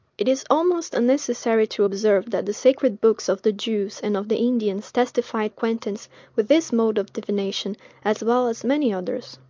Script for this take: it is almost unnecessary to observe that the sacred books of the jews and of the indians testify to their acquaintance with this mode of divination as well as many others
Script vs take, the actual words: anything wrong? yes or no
yes